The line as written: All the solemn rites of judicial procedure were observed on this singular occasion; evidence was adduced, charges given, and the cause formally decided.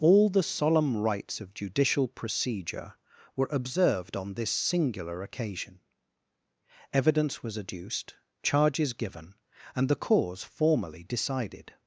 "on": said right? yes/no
yes